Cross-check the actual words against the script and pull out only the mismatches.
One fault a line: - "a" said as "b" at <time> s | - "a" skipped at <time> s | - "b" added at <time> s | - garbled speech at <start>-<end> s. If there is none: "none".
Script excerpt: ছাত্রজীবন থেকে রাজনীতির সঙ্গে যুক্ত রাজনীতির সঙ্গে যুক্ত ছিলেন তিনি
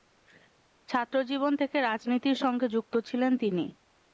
- "রাজনীতির সঙ্গে যুক্ত" skipped at 2.9 s